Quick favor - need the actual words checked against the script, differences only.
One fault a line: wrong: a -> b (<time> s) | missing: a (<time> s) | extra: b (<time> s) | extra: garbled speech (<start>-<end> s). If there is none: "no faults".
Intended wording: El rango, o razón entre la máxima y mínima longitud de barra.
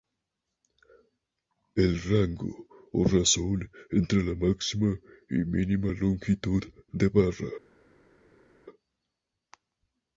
no faults